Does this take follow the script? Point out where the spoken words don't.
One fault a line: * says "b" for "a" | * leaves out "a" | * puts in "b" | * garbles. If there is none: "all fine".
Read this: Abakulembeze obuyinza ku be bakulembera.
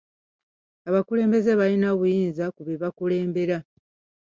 * puts in "balina"